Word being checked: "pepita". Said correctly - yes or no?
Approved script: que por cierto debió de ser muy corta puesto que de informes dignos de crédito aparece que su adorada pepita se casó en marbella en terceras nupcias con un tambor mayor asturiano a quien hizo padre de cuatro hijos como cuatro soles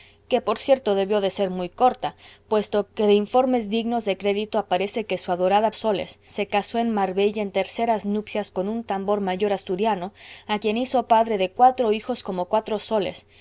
no